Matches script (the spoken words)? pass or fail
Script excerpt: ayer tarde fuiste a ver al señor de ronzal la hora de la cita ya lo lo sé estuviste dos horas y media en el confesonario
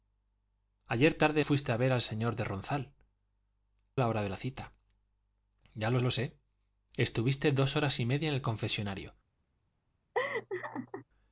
pass